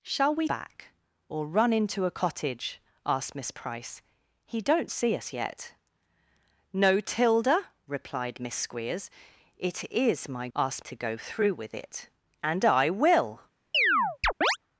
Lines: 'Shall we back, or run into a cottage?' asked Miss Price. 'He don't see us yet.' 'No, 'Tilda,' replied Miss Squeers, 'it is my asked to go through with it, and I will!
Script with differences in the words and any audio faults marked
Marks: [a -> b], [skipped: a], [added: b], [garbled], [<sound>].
'Shall we back, or run into a cottage?' asked Miss Price. 'He don't see us yet.' 'No, 'Tilda,' replied Miss Squeers, 'it is my asked to go through with it, and I will! [chirp]